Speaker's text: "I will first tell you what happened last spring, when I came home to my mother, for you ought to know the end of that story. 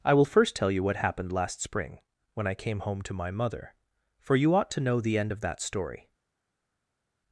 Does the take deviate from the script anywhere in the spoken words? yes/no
no